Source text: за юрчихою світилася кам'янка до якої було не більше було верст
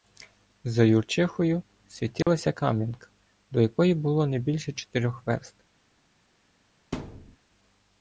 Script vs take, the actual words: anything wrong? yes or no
yes